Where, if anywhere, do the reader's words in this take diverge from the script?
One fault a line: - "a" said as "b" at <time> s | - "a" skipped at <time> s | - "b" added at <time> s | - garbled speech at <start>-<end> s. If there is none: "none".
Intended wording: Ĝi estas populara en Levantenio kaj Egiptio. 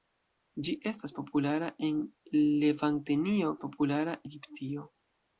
- "kaj" said as "populara" at 3.6 s